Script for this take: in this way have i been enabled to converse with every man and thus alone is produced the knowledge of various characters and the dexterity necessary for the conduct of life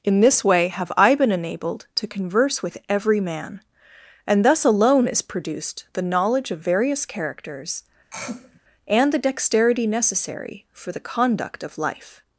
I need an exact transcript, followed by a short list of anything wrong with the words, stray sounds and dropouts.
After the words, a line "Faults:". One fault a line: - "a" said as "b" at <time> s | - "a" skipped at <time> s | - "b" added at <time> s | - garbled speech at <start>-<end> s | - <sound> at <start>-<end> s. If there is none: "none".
in this way have i been enabled to converse with every man and thus alone is produced the knowledge of various characters and the dexterity necessary for the conduct of life
Faults:
- throat clearing at 8.1-8.6 s